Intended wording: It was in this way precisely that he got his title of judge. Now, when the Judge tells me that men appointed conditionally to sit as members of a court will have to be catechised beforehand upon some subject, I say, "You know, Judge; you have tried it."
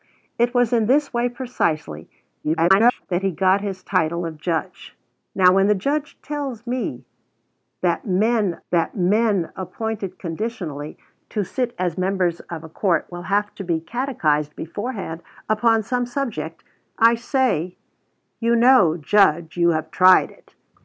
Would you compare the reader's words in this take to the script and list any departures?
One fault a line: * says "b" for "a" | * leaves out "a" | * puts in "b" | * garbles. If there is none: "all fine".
* garbles
* puts in "that men"